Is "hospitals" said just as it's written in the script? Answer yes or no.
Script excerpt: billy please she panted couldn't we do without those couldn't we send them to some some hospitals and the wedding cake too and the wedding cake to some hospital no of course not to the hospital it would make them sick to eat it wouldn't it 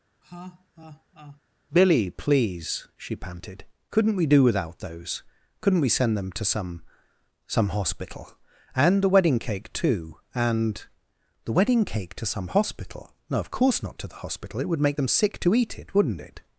no